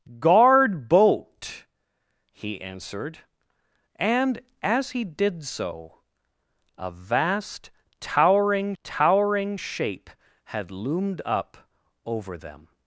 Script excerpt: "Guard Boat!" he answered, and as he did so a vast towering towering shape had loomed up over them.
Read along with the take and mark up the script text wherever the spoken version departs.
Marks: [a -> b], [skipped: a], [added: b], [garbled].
"Guard Boat!" he answered, and as he did so a vast towering towering shape had loomed up over them.